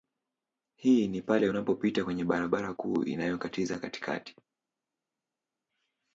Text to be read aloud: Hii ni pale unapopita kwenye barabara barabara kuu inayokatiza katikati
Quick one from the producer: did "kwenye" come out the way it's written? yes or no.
yes